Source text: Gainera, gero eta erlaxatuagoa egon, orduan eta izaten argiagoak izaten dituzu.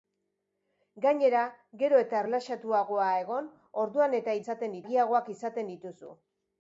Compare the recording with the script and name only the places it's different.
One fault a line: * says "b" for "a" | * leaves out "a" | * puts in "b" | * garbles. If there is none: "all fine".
all fine